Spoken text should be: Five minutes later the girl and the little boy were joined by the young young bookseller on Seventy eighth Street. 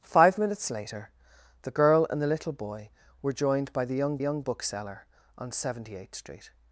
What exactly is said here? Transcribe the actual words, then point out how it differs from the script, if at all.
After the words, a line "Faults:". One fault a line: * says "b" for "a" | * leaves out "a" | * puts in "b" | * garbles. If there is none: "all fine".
Five minutes later the girl and the little boy were joined by the young young bookseller on Seventy eighth Street.
Faults:
all fine